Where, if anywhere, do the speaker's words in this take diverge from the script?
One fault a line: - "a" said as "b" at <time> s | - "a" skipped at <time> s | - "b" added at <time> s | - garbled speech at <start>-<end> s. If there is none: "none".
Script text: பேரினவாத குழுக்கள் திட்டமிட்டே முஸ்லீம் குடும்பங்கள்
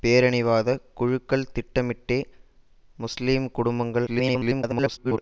- garbled speech at 4.1-5.2 s